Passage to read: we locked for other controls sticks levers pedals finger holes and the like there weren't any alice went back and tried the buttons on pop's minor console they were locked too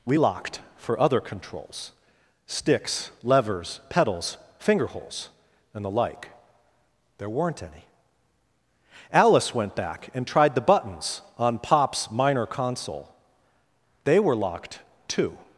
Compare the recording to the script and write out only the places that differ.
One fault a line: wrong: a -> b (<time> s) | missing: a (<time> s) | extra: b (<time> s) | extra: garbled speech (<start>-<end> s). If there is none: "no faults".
no faults